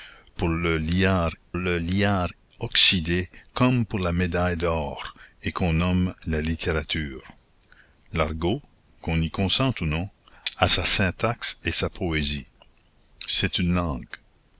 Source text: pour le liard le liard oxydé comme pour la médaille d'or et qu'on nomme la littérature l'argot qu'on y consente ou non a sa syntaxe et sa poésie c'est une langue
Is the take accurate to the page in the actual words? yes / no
yes